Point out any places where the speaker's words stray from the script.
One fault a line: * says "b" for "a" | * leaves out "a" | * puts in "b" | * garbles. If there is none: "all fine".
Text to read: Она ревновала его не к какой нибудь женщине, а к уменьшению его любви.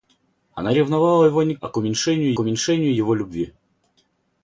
* leaves out "какой нибудь женщине"
* puts in "уменьшению"